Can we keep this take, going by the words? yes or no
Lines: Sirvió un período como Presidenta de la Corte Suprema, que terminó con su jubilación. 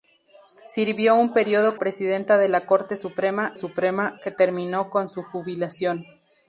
no